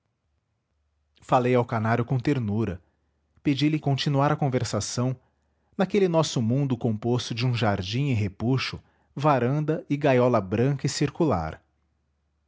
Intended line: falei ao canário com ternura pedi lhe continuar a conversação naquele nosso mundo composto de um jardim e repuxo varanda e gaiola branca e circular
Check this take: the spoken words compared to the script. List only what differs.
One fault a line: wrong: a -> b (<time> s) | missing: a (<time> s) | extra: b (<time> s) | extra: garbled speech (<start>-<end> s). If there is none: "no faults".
no faults